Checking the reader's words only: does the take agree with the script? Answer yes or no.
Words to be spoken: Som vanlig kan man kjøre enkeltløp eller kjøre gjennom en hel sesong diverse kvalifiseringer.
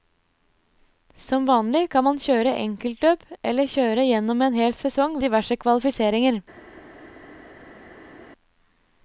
yes